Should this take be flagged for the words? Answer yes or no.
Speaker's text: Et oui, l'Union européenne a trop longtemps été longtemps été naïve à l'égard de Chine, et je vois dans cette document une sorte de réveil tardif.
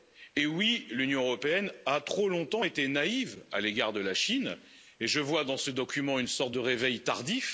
yes